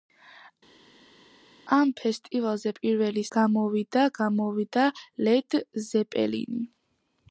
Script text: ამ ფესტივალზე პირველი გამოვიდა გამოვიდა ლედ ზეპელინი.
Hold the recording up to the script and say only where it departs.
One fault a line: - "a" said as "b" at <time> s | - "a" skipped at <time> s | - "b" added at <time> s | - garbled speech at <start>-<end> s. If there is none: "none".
none